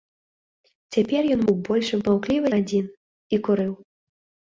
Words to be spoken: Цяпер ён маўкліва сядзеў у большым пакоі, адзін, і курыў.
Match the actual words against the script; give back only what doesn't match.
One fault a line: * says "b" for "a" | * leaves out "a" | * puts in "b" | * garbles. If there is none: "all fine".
* leaves out "маўкліва сядзеў"
* says "маўкліва" for "пакоі"